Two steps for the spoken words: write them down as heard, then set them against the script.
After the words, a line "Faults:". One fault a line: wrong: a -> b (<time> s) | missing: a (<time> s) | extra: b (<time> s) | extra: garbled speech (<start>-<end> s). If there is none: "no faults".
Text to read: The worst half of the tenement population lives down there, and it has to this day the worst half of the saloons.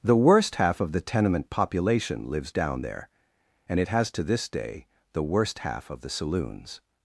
The worst half of the tenement population lives down there, and it has to this day the worst half of the saloons.
Faults:
no faults